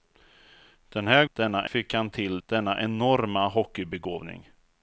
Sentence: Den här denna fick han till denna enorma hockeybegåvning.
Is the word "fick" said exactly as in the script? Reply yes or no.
yes